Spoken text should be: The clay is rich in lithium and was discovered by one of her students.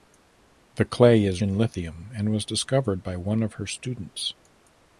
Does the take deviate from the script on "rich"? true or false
true